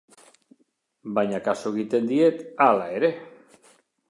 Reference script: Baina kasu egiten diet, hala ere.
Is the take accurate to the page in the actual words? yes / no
yes